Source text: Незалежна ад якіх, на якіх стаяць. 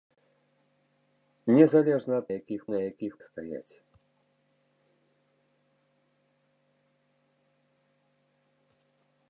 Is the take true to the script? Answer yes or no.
yes